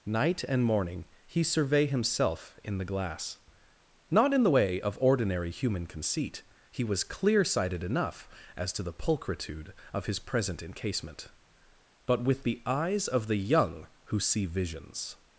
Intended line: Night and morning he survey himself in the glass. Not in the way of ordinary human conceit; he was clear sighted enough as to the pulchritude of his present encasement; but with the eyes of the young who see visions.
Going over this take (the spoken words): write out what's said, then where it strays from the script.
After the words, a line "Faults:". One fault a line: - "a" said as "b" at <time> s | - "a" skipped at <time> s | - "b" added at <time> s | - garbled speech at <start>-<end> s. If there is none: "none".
Night and morning he survey himself in the glass. Not in the way of ordinary human conceit; he was clear sighted enough as to the pulchritude of his present encasement; but with the eyes of the young who see visions.
Faults:
none